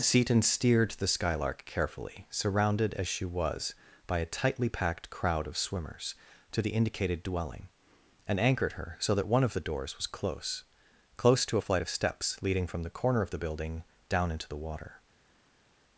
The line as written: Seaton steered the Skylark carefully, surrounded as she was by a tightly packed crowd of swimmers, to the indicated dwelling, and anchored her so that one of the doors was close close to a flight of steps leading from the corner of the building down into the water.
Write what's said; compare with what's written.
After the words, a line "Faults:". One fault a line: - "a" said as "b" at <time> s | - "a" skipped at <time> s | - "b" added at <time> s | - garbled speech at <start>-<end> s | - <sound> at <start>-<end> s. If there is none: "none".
Seaton steered the Skylark carefully, surrounded as she was by a tightly packed crowd of swimmers, to the indicated dwelling, and anchored her so that one of the doors was close close to a flight of steps leading from the corner of the building down into the water.
Faults:
none